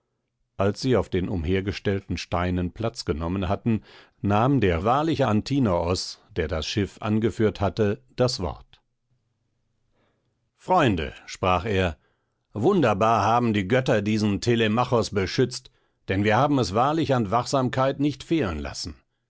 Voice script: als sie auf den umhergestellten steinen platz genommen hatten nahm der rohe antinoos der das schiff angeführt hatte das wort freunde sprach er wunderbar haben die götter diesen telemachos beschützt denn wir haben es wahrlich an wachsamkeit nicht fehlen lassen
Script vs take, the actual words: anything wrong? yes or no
yes